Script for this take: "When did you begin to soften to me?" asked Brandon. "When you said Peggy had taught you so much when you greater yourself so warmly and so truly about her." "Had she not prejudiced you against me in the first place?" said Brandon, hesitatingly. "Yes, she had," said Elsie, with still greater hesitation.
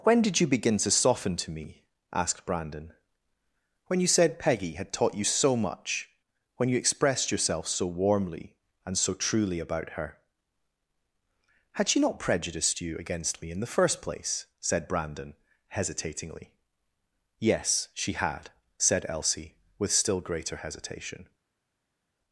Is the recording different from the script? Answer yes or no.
yes